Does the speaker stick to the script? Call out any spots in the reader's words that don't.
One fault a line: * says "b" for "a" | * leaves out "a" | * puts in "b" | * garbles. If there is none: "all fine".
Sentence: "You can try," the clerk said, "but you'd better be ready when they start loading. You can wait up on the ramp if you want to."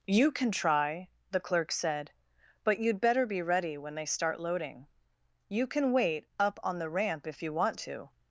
all fine